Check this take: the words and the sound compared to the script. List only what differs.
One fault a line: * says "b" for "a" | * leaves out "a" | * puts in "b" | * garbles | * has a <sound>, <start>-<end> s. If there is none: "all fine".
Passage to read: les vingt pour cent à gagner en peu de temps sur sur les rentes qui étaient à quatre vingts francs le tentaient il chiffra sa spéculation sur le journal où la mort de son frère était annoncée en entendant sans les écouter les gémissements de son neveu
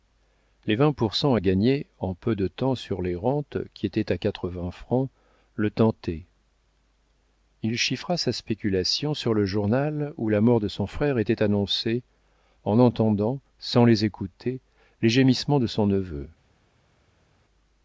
* leaves out "sur"